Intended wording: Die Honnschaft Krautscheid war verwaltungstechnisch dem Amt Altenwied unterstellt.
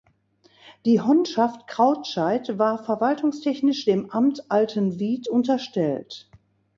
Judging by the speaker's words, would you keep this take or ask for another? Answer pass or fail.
pass